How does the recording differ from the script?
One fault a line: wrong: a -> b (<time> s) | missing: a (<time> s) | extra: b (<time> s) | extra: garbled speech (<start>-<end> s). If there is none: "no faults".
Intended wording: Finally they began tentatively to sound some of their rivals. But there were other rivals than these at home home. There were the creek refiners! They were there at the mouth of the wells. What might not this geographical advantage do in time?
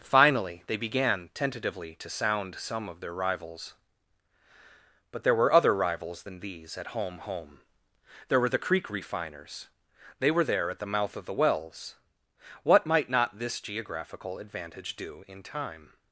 no faults